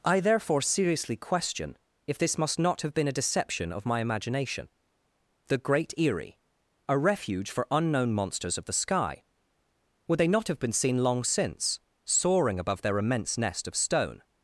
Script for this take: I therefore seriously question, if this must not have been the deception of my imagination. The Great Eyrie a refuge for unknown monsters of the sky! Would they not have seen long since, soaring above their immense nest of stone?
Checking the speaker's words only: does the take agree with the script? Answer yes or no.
no